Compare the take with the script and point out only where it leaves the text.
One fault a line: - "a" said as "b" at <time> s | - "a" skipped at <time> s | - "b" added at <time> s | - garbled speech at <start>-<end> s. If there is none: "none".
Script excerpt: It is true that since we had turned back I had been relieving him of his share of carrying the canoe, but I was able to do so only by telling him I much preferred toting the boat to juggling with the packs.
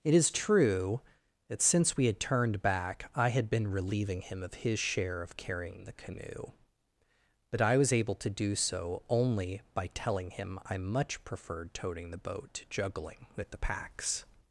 none